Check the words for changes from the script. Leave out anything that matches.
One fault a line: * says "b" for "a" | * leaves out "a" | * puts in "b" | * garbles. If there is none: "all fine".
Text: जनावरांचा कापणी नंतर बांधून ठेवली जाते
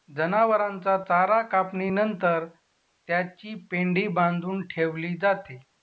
* puts in "चारा"
* puts in "त्याची पेंढी"